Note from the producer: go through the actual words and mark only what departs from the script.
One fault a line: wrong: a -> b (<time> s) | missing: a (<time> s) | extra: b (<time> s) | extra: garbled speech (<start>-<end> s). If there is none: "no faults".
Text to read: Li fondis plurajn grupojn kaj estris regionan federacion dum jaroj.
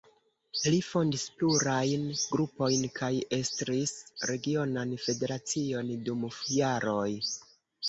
no faults